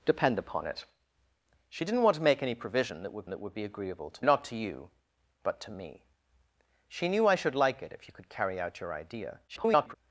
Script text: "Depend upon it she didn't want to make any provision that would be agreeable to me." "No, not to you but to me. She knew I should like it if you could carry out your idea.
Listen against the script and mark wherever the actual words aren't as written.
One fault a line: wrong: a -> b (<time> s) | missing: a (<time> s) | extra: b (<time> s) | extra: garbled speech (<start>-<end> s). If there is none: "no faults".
extra: that would (3.3 s)
missing: me No (4.2 s)
extra: garbled speech (9.5-9.9 s)